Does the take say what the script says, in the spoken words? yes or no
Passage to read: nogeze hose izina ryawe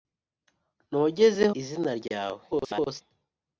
no